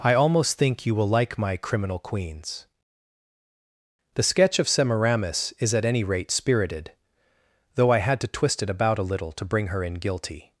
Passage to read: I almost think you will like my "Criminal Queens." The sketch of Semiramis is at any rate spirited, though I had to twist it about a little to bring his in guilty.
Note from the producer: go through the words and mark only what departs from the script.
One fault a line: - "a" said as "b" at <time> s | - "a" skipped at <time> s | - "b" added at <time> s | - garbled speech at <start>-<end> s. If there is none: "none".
- "his" said as "her" at 9.7 s